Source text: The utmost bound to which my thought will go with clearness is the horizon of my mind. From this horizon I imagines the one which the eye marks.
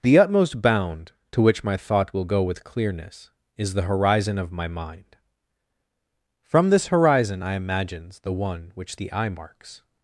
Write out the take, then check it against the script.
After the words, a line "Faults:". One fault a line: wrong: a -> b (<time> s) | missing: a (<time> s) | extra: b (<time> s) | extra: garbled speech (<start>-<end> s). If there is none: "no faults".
The utmost bound to which my thought will go with clearness is the horizon of my mind. From this horizon I imagines the one which the eye marks.
Faults:
no faults